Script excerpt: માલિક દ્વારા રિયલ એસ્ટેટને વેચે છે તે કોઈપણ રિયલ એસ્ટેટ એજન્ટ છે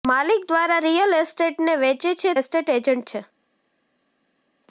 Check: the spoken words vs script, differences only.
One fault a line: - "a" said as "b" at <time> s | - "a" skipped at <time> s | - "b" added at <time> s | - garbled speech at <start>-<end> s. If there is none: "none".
- "તે કોઈપણ રિયલ" skipped at 2.3 s